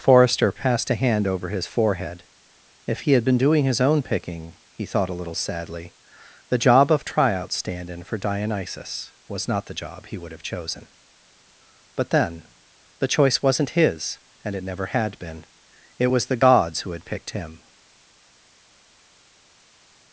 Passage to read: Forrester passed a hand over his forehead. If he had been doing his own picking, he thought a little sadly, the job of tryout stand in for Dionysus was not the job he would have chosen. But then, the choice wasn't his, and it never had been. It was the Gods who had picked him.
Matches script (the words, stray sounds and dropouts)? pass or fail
pass